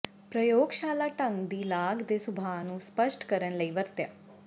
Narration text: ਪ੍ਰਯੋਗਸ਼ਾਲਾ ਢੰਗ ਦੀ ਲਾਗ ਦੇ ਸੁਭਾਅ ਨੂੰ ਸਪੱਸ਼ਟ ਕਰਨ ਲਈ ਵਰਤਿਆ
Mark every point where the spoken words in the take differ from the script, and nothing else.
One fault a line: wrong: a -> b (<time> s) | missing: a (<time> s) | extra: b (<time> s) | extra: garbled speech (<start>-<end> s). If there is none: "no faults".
no faults